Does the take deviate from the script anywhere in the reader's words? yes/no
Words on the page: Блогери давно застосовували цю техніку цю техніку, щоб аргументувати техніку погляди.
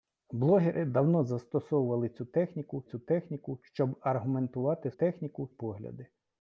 no